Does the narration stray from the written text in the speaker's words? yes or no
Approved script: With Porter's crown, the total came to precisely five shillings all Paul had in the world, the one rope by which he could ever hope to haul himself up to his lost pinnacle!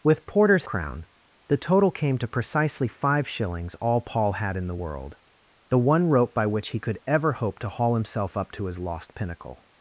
no